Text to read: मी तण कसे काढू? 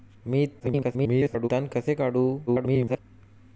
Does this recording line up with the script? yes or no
no